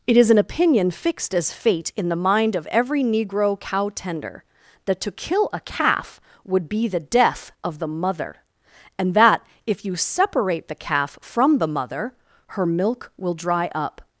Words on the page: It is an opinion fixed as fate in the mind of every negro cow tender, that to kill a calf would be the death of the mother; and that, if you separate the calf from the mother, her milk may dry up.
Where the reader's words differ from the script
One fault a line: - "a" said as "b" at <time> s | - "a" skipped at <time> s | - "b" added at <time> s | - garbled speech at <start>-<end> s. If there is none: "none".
- "may" said as "will" at 13.2 s